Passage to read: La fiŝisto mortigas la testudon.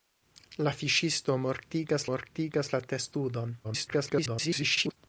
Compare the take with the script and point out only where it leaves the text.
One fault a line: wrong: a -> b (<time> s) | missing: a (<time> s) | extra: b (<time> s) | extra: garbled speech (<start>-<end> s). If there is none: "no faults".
extra: mortigas (2.1 s)
extra: garbled speech (3.6-5.0 s)